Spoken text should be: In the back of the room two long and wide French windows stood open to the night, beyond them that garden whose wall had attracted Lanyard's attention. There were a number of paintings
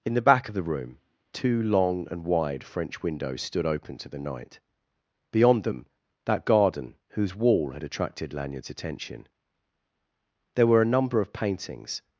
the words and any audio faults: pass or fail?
pass